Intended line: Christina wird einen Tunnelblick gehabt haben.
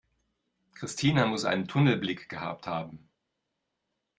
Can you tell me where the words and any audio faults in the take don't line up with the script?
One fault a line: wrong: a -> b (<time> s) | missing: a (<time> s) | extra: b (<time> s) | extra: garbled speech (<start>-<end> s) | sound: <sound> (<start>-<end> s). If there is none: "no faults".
wrong: wird -> muss (1.3 s)